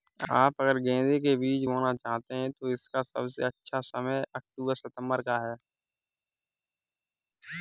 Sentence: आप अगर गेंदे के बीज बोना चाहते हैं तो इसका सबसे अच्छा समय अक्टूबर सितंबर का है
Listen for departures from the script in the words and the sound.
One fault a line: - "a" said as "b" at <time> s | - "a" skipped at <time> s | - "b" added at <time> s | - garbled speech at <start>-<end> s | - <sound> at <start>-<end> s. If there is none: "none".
none